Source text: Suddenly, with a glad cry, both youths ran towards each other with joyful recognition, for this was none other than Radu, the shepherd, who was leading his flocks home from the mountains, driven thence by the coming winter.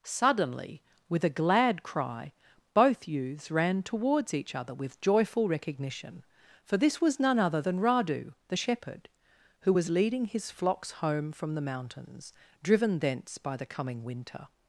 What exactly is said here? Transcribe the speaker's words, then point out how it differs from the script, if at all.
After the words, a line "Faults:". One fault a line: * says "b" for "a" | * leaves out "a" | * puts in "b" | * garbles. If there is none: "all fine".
Suddenly, with a glad cry, both youths ran towards each other with joyful recognition, for this was none other than Radu, the shepherd, who was leading his flocks home from the mountains, driven thence by the coming winter.
Faults:
all fine